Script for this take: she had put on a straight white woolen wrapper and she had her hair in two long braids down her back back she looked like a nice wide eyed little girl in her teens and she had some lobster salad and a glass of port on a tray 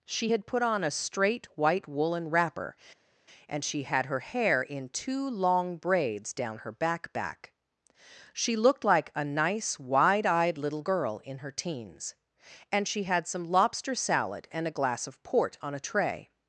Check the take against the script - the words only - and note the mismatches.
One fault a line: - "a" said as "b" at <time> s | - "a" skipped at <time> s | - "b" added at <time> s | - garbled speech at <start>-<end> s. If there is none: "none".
none